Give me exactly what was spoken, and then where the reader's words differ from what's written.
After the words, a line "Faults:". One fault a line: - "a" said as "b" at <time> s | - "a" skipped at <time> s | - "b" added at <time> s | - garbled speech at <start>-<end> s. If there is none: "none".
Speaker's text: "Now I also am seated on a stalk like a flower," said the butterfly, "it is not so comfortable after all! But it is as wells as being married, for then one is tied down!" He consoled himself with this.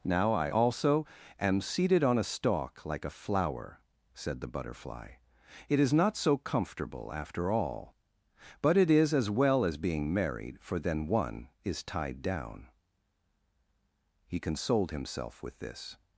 "Now I also am seated on a stalk like a flower," said the butterfly, "it is not so comfortable after all! But it is as well as being married, for then one is tied down!" He consoled himself with this.
Faults:
- "wells" said as "well" at 9.3 s